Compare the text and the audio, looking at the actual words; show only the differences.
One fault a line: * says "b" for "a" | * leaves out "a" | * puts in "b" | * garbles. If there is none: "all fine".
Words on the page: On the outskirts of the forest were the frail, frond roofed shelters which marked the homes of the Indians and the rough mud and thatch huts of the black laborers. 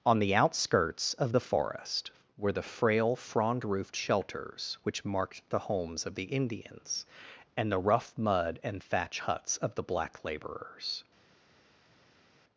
all fine